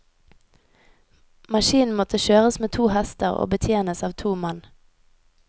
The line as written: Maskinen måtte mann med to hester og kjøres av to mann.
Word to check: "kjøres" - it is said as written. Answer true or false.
false